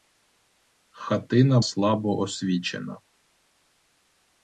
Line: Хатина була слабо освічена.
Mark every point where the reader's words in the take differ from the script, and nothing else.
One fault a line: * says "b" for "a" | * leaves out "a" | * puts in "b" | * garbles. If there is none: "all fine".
* leaves out "була"